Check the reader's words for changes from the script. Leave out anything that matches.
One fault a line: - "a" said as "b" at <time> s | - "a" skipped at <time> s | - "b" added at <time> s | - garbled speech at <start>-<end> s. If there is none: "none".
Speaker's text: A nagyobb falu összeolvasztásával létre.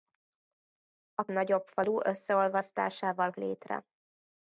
none